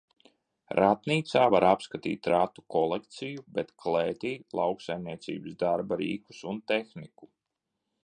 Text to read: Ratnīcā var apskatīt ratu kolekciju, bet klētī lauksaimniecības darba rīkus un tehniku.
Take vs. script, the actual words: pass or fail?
pass